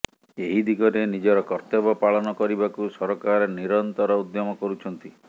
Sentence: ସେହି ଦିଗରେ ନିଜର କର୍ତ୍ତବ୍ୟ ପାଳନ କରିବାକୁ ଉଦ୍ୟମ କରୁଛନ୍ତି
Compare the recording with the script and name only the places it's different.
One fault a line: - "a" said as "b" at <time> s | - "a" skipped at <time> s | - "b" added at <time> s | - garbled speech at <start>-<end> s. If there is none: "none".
- "ସେହି" said as "ଏହି" at 0.4 s
- "ସରକାର ନିରନ୍ତର" added at 2.9 s